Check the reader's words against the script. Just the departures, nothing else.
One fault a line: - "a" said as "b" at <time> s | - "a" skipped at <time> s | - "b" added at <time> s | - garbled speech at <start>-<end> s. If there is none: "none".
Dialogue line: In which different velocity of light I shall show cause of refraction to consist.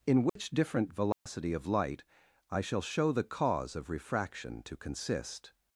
- "the" added at 3.1 s